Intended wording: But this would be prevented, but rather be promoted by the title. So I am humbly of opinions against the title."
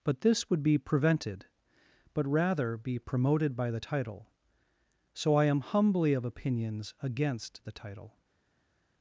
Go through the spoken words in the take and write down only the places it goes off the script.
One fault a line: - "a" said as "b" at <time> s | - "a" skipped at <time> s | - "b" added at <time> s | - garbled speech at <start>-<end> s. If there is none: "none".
none